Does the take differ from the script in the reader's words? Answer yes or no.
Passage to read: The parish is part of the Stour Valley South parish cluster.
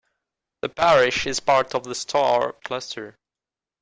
yes